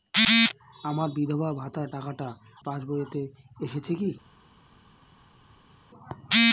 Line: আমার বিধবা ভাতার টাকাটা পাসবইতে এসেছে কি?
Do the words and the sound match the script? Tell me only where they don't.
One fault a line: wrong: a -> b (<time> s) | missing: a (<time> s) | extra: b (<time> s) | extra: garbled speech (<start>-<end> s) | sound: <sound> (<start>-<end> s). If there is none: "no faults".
no faults